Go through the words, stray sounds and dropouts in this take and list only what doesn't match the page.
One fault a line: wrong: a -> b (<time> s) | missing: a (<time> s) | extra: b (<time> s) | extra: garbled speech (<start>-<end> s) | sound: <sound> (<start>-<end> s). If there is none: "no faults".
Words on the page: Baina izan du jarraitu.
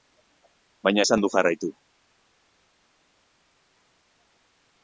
no faults